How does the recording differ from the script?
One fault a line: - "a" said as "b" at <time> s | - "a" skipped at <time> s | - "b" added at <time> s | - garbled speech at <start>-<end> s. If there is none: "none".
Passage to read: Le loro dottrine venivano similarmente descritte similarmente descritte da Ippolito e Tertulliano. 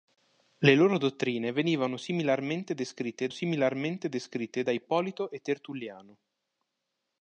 none